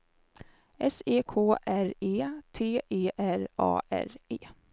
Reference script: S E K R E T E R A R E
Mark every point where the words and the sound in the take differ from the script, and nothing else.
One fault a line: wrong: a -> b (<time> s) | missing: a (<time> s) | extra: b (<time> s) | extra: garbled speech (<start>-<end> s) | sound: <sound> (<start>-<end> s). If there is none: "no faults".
no faults